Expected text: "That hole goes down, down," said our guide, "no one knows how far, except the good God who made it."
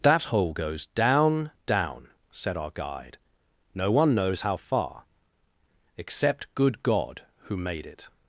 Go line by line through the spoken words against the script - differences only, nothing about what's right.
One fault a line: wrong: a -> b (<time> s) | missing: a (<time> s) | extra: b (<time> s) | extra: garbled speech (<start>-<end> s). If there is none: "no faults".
missing: the (6.5 s)